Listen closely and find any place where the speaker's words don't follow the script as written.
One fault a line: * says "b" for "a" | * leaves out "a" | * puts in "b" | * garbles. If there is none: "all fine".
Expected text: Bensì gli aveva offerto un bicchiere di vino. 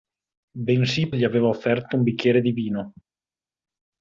all fine